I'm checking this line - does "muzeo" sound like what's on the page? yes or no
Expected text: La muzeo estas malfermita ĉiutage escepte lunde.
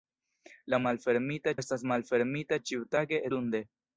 no